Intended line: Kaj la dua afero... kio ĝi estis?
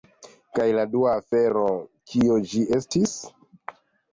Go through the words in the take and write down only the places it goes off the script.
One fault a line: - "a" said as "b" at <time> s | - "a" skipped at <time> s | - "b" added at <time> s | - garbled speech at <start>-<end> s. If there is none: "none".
none